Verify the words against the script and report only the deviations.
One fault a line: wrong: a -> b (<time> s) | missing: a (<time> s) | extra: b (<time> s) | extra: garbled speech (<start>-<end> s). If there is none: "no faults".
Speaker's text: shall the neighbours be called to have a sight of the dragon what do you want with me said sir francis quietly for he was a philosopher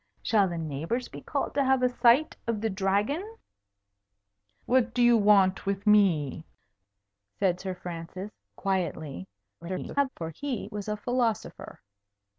extra: garbled speech (9.6-10.1 s)